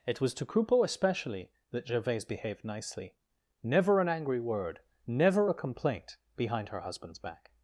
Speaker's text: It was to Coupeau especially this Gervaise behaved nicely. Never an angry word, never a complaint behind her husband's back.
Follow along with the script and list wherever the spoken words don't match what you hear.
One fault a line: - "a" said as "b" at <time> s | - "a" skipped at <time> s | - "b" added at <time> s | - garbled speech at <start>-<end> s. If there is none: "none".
- "this" said as "that" at 1.7 s